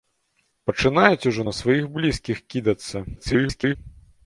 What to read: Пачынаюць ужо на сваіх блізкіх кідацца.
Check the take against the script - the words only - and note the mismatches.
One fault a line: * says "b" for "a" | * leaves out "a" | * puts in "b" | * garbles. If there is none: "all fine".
* garbles